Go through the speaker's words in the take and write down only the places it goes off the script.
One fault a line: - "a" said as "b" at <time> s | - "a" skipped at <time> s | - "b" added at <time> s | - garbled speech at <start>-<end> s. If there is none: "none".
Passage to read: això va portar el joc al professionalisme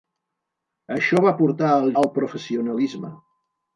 - "joc" skipped at 1.9 s